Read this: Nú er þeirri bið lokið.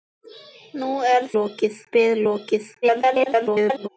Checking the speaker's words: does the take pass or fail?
fail